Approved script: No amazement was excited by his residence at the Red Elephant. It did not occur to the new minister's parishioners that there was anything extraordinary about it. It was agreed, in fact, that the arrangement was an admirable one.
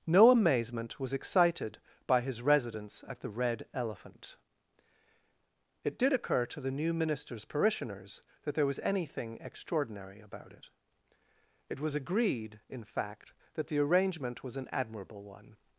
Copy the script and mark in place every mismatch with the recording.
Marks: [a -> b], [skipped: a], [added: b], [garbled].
No amazement was excited by his residence at the Red Elephant. It did [skipped: not] occur to the new minister's parishioners that there was anything extraordinary about it. It was agreed, in fact, that the arrangement was an admirable one.